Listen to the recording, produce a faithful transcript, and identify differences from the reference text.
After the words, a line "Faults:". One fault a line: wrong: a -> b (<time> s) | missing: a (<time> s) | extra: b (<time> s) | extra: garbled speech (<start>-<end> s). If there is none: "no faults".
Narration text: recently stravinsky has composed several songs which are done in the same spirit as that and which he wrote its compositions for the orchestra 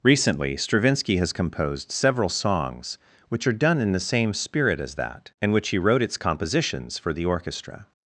recently stravinsky has composed several songs which are done in the same spirit as that and which he wrote its compositions for the orchestra
Faults:
no faults